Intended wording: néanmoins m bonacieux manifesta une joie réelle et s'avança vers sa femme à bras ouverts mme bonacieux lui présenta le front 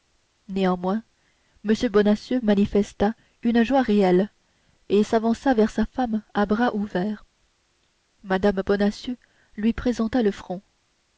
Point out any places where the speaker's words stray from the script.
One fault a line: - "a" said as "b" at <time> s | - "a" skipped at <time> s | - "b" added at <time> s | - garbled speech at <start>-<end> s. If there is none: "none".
none